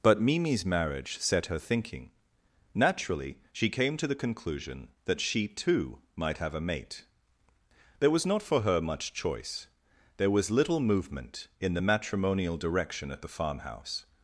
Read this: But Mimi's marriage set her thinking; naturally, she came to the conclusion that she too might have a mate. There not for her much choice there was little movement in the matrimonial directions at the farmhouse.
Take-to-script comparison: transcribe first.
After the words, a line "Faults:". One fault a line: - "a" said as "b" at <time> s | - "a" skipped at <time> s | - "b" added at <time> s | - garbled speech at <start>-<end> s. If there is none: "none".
But Mimi's marriage set her thinking; naturally, she came to the conclusion that she too might have a mate. There was not for her much choice there was little movement in the matrimonial direction at the farmhouse.
Faults:
- "was" added at 8.1 s
- "directions" said as "direction" at 12.6 s